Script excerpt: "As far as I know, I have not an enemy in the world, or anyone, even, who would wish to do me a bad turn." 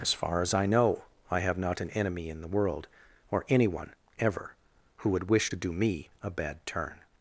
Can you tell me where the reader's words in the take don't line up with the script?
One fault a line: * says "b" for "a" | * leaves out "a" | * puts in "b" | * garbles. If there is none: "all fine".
* says "ever" for "even"